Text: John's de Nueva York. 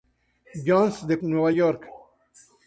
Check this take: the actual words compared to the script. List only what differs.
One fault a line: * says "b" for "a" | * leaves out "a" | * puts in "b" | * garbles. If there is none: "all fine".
all fine